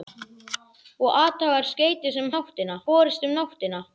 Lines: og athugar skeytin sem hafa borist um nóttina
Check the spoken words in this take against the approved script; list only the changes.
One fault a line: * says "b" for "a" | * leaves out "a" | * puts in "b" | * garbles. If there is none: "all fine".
* says "nóttina" for "hafa"